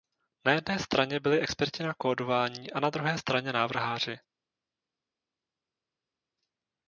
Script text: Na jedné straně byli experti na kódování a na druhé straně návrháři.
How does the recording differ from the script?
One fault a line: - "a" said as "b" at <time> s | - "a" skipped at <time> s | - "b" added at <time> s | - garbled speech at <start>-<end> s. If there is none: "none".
none